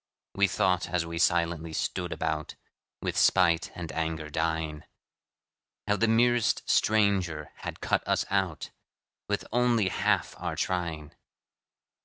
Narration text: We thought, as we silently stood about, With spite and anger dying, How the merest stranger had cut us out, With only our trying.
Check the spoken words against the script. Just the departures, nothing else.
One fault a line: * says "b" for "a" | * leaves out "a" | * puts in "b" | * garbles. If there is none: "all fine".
* puts in "half"